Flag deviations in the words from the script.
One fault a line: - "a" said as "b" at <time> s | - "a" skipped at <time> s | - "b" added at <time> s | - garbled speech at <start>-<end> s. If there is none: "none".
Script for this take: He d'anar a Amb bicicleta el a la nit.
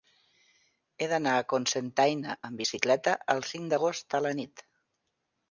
- "Cocentaina" added at 1.5 s
- "cinc d'agost" added at 3.5 s